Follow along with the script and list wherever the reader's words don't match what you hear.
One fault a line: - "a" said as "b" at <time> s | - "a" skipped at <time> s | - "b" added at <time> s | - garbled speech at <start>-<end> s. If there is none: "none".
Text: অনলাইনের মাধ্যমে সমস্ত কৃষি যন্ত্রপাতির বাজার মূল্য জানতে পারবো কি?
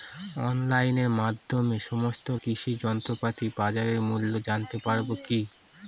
none